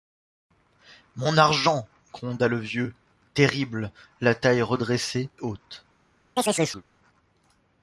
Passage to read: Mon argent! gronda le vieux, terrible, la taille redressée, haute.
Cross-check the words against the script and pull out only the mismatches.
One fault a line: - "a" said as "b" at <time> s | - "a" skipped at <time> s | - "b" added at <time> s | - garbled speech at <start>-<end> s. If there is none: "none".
none